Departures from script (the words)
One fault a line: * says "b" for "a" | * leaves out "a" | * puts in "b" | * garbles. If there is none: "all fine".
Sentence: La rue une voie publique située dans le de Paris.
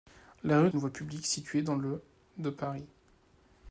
all fine